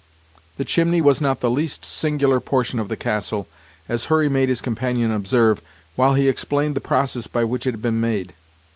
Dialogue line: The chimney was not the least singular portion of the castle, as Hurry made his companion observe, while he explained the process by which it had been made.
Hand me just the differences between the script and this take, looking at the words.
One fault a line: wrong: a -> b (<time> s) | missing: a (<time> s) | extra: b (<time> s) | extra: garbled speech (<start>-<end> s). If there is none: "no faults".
no faults